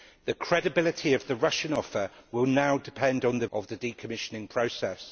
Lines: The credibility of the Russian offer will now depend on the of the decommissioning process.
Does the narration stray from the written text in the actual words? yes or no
no